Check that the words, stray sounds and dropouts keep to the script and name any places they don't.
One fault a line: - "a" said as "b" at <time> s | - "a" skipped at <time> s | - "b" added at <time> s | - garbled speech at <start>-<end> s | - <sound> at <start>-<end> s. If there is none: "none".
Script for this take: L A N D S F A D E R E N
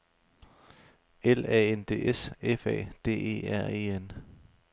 none